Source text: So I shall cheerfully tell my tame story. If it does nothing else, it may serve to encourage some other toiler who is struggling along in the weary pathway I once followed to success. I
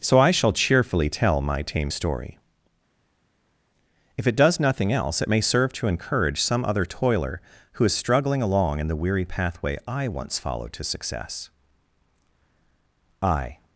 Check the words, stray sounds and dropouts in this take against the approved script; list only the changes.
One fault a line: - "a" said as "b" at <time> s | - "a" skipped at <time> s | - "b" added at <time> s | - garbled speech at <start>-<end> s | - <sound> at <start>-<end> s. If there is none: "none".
none